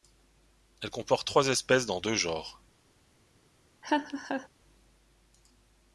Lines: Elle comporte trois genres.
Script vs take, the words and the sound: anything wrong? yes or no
yes